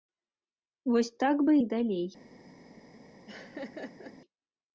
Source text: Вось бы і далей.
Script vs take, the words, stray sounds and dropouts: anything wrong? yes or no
yes